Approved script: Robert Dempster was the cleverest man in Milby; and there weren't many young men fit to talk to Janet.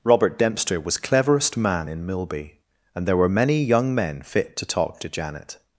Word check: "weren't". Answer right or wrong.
wrong